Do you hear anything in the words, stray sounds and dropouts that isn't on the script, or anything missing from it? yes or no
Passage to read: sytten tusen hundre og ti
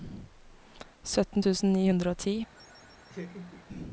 yes